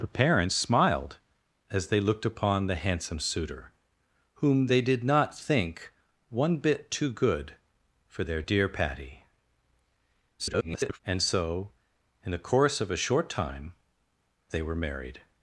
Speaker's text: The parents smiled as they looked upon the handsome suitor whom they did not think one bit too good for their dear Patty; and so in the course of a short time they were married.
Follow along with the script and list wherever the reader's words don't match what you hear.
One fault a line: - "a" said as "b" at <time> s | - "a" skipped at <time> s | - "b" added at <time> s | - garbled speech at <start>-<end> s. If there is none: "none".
- garbled speech at 10.4-11.0 s